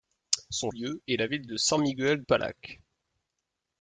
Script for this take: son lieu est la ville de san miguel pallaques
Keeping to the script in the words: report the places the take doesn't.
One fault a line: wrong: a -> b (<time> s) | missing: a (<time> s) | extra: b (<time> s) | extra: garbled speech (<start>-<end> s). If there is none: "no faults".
no faults